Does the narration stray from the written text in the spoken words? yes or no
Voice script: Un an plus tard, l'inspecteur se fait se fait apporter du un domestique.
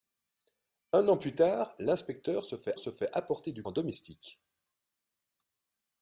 no